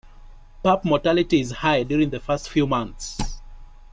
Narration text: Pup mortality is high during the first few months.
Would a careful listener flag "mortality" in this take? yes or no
no